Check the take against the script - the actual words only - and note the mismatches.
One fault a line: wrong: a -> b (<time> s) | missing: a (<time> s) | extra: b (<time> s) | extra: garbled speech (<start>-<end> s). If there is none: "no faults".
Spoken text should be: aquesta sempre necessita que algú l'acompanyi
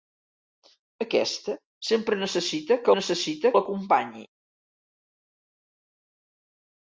wrong: algú -> necessita (2.9 s)